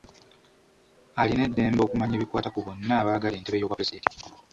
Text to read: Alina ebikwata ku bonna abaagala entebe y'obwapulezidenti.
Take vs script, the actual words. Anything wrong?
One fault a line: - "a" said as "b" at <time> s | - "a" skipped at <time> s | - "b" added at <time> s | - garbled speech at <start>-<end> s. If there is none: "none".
- "eddembe okumanya" added at 1.5 s